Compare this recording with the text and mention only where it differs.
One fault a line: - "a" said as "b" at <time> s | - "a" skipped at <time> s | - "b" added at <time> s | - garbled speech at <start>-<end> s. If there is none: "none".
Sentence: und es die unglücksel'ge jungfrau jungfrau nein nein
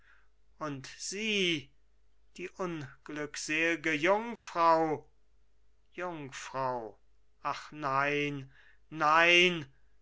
- "es" said as "sie" at 1.0 s
- "ach" added at 7.4 s